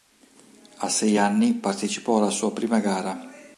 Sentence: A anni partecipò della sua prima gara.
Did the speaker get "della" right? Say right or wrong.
wrong